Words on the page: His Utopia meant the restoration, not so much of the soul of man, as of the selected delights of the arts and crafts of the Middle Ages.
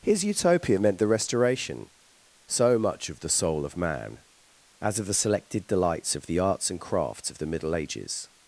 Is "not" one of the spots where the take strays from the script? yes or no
yes